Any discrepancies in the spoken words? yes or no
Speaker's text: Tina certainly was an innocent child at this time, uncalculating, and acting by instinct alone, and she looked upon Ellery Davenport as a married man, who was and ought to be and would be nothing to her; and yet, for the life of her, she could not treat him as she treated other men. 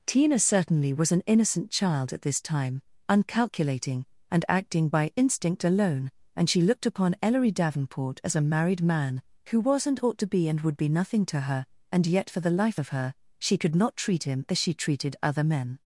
no